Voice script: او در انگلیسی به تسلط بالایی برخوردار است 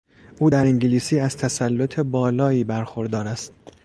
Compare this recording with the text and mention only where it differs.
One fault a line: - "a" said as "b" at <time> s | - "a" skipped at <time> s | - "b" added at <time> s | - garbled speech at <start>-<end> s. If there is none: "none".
- "به" said as "از" at 1.2 s